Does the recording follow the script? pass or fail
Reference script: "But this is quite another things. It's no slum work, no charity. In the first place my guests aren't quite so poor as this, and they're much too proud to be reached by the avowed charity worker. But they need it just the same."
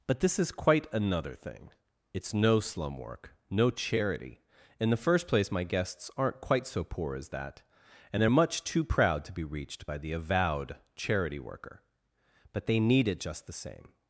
fail